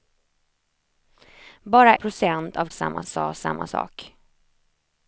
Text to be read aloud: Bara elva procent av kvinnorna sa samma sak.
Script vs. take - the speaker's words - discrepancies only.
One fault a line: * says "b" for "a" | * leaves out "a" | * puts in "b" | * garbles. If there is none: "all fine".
* leaves out "elva"
* says "samma" for "kvinnorna"